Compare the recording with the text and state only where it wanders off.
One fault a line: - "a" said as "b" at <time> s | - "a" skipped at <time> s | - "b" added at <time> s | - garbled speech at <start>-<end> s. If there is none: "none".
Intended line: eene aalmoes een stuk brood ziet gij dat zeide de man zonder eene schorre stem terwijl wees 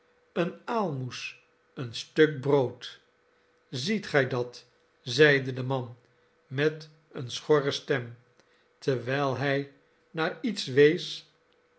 - "zonder" said as "met" at 6.5 s
- "hij naar iets" added at 9.4 s